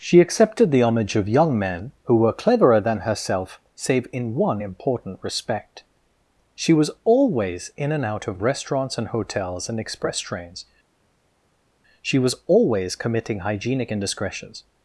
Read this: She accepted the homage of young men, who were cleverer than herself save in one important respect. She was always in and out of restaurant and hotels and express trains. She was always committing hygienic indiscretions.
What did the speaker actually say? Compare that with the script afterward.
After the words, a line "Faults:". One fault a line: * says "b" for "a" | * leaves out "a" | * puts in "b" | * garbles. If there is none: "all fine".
She accepted the homage of young men, who were cleverer than herself save in one important respect. She was always in and out of restaurants and hotels and express trains. She was always committing hygienic indiscretions.
Faults:
* says "restaurants" for "restaurant"